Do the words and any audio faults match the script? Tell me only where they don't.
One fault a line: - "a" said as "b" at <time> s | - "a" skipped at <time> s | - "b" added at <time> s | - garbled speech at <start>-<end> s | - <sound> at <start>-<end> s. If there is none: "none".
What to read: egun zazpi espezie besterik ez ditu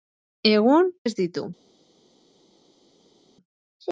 - "zazpi espezie besterik" skipped at 0.9 s